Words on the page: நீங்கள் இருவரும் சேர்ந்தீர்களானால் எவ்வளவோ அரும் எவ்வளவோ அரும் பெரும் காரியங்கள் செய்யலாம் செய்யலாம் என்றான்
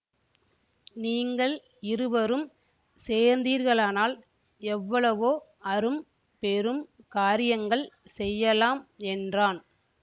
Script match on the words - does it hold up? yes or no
no